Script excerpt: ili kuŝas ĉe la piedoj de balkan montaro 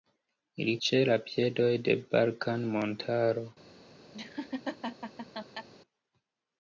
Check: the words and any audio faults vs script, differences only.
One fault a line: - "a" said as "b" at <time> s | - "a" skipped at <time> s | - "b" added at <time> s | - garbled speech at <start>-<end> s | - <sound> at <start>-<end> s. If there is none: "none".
- "kuŝas" skipped at 0.7 s
- laugh at 4.1-5.7 s